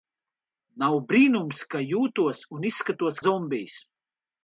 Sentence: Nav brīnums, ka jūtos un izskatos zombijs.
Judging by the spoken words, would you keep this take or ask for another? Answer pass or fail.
pass